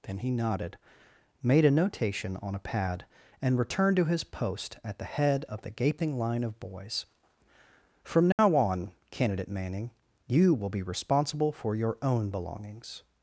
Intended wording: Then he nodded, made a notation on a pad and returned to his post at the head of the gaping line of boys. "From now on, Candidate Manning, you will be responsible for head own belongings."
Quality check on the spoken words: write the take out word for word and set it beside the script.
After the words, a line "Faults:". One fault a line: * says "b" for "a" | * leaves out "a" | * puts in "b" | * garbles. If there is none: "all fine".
Then he nodded, made a notation on a pad and returned to his post at the head of the gaping line of boys. "From now on, Candidate Manning, you will be responsible for your own belongings."
Faults:
* says "your" for "head"